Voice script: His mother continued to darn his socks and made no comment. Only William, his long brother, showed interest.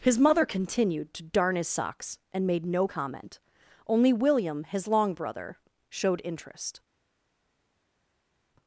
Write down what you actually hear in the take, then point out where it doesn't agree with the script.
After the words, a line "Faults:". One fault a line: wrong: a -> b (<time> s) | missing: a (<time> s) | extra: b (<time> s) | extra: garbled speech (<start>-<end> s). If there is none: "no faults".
His mother continued to darn his socks and made no comment. Only William, his long brother, showed interest.
Faults:
no faults